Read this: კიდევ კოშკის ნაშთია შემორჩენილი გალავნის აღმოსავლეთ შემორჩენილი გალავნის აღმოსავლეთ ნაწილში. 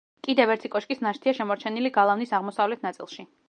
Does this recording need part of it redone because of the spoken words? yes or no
yes